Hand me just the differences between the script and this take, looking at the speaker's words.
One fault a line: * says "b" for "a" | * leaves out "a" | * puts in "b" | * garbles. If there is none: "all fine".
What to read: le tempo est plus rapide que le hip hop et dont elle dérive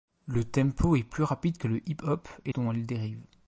all fine